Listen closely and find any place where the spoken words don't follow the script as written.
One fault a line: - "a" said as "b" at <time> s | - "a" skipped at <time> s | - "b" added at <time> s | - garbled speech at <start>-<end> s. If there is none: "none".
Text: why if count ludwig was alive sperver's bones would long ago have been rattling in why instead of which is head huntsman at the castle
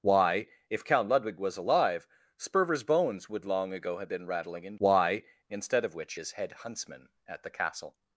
none